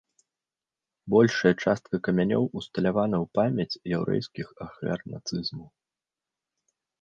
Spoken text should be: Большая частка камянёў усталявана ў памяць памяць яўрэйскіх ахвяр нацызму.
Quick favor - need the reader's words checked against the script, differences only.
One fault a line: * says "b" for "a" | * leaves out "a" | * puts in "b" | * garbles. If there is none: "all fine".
* leaves out "памяць"